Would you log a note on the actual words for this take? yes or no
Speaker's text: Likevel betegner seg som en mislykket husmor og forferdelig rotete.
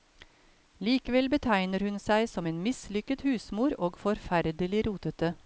yes